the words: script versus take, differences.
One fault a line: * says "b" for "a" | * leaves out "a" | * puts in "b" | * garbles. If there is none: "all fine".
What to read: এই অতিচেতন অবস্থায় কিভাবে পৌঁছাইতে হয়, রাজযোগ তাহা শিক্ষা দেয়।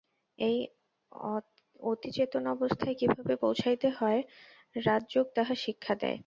all fine